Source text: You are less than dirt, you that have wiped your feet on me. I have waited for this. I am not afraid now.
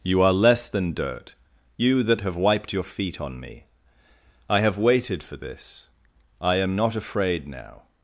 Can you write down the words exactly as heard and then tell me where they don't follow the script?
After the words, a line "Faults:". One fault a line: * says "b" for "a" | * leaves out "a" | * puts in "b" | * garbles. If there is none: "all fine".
You are less than dirt, you that have wiped your feet on me. I have waited for this. I am not afraid now.
Faults:
all fine